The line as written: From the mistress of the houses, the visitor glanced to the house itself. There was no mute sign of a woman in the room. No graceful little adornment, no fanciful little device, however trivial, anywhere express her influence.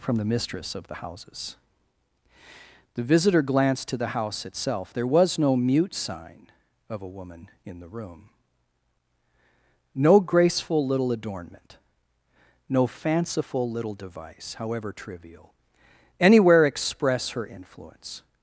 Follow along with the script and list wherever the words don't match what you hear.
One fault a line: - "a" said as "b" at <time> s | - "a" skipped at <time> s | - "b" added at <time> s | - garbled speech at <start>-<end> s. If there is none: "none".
none